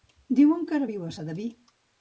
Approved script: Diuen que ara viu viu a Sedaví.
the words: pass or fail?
fail